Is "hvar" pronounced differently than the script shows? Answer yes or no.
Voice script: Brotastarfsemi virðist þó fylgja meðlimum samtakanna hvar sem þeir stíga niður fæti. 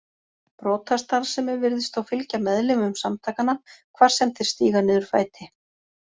no